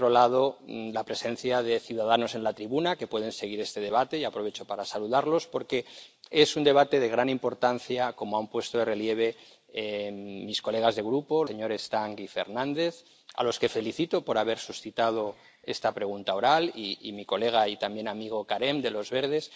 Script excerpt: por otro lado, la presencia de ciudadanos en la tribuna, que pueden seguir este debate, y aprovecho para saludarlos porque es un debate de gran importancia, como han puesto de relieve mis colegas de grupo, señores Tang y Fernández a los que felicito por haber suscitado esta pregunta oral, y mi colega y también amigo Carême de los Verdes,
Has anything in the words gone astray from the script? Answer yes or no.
no